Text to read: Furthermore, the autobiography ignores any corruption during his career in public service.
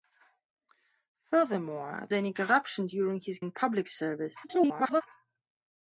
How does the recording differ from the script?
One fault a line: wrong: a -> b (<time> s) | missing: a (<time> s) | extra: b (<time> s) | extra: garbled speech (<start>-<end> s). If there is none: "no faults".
missing: the autobiography ignores (2.1 s)
missing: career (3.4 s)
extra: garbled speech (4.4-5.0 s)